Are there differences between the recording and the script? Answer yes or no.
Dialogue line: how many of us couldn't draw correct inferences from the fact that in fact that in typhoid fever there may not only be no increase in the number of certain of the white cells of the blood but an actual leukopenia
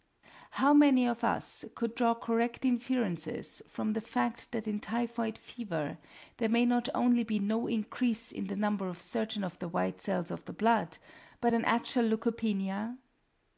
yes